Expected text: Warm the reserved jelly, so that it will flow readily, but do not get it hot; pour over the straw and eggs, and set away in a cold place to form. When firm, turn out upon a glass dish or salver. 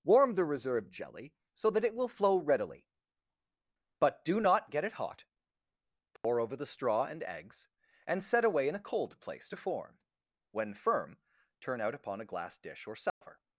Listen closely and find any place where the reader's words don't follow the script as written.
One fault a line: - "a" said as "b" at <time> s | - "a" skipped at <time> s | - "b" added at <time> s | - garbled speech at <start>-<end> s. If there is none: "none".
none